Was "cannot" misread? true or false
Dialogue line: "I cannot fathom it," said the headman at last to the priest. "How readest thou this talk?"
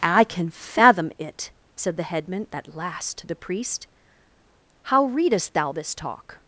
true